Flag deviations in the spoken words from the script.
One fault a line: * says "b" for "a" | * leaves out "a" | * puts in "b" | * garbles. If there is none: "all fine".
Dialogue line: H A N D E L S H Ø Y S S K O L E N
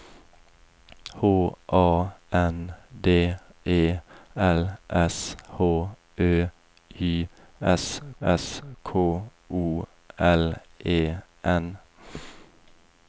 all fine